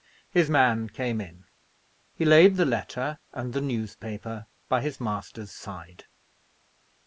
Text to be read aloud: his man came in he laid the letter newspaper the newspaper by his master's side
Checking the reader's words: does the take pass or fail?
fail